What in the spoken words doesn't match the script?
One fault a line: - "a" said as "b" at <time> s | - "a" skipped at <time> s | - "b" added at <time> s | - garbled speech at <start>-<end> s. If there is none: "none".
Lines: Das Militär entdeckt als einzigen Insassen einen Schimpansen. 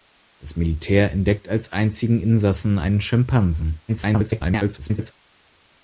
- garbled speech at 3.9-5.1 s